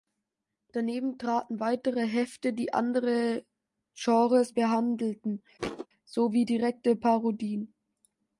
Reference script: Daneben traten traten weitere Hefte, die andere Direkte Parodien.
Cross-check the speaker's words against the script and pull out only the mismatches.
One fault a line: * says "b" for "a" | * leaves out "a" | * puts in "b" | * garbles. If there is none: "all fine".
* leaves out "traten"
* puts in "Genres behandelten sowie"